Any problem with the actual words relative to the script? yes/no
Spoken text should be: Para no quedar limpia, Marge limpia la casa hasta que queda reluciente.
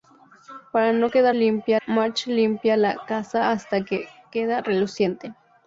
no